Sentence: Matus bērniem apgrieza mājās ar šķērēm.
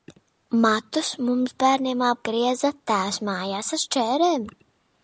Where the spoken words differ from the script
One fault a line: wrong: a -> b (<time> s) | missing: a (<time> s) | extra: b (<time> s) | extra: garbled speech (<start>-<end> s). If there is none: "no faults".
extra: mums (1.3 s)
extra: tēvs (2.9 s)